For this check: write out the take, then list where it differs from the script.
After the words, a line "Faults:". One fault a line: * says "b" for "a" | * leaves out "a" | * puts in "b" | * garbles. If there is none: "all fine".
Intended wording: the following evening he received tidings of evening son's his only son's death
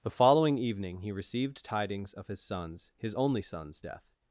the following evening he received tidings of his son's his only son's death
Faults:
* says "his" for "evening"